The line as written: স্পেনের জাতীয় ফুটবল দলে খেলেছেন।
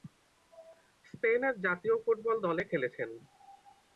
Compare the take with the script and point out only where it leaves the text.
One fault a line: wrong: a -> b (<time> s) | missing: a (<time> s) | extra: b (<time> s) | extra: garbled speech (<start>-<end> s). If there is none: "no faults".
no faults